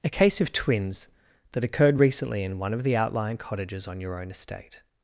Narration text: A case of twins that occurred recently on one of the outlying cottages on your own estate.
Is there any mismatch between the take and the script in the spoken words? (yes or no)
yes